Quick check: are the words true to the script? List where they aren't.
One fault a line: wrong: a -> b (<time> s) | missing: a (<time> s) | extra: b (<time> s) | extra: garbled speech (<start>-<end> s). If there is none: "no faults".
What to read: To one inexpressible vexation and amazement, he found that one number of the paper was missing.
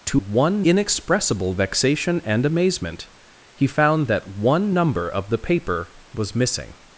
no faults